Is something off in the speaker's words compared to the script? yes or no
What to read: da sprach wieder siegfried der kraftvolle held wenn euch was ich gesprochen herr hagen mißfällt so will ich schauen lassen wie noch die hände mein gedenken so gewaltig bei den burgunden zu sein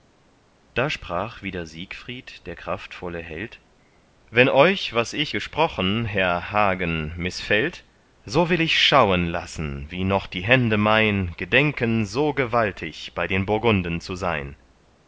no